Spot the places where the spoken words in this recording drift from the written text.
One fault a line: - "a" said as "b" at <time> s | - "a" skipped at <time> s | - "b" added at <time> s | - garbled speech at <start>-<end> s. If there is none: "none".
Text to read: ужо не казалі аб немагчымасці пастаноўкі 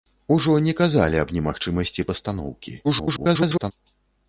- garbled speech at 2.8-3.7 s